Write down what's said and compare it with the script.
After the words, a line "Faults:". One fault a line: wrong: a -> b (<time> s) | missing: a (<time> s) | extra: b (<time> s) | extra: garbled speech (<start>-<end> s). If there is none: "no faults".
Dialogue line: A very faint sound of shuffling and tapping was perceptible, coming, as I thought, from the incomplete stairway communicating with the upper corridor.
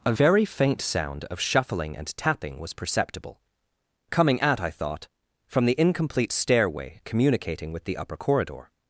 A very faint sound of shuffling and tapping was perceptible, coming, at I thought, from the incomplete stairway communicating with the upper corridor.
Faults:
wrong: as -> at (4.4 s)